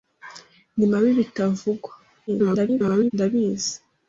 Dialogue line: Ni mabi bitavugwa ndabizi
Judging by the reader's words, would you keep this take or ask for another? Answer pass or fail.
fail